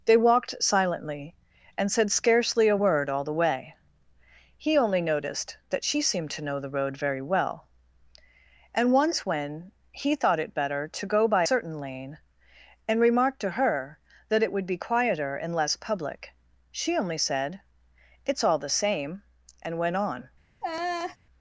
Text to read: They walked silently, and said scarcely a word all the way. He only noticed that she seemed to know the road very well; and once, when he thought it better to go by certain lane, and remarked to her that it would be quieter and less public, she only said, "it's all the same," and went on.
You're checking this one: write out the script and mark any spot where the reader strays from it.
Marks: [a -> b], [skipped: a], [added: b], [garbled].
They walked silently, and said scarcely a word all the way. He only noticed that she seemed to know the road very well; and once, when he thought it better to go by certain lane, and remarked to her that it would be quieter and less public, she only said, "it's all the same," and went on.